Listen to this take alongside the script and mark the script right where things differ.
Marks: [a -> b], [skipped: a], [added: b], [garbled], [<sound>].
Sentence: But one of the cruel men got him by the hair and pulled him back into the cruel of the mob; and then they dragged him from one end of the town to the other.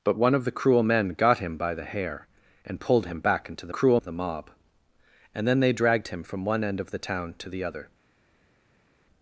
But one of the cruel men got him by the hair and pulled him back into the cruel of the mob; and then they dragged him from one end of the town to the other.